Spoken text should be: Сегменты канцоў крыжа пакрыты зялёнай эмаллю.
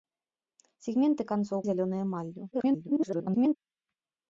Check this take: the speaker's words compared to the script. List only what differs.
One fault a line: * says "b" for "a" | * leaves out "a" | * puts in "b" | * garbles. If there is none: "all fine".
* leaves out "крыжа пакрыты"
* garbles